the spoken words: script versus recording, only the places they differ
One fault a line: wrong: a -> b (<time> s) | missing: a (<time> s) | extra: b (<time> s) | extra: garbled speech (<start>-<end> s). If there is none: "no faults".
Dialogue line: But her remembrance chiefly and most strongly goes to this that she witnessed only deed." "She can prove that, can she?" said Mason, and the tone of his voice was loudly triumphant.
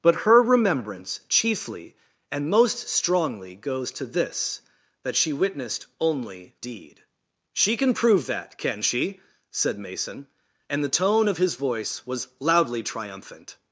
no faults